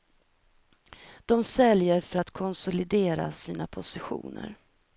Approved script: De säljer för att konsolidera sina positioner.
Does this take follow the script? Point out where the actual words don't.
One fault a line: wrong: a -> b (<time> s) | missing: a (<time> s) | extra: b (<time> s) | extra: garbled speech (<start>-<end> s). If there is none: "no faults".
no faults